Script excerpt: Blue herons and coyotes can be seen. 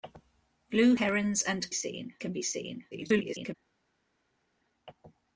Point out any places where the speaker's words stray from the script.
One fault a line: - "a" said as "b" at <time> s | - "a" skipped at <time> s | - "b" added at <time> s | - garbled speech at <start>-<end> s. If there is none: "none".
- "coyotes" said as "seen" at 1.7 s
- garbled speech at 2.9-3.5 s